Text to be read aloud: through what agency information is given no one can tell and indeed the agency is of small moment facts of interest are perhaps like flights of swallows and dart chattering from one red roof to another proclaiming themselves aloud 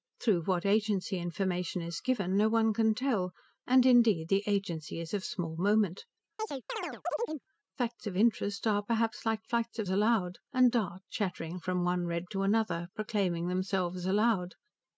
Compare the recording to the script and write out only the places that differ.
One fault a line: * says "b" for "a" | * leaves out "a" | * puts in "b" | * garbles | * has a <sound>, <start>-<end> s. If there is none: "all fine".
* has a chirp, 6.4-7.5 s
* says "aloud" for "swallows"
* leaves out "roof"